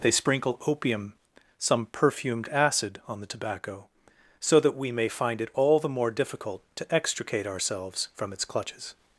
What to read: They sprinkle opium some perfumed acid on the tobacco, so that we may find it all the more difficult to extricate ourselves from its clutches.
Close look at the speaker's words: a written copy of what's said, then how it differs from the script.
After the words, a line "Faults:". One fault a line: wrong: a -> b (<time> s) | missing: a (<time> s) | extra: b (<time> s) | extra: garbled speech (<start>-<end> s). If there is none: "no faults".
They sprinkle opium some perfumed acid on the tobacco, so that we may find it all the more difficult to extricate ourselves from its clutches.
Faults:
no faults